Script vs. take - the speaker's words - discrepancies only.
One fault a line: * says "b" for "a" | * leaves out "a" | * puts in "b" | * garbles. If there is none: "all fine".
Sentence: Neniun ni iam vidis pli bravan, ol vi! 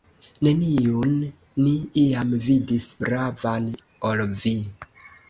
* leaves out "pli"